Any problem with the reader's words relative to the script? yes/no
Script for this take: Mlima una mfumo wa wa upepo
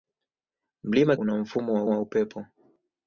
no